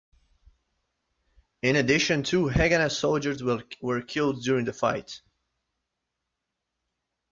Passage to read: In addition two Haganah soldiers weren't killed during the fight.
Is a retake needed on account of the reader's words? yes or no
yes